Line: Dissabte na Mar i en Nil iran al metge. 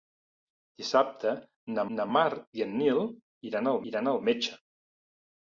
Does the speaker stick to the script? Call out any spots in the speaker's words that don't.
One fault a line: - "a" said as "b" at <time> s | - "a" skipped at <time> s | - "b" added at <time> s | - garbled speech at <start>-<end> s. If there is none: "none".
- "na" added at 2.0 s
- "iran al" added at 3.9 s